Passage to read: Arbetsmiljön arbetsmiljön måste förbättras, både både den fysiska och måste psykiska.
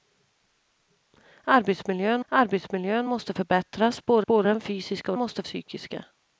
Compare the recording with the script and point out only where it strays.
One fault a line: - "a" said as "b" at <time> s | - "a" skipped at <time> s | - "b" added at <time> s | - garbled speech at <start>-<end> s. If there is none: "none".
none